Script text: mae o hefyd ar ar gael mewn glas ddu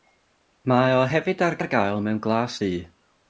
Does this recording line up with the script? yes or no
yes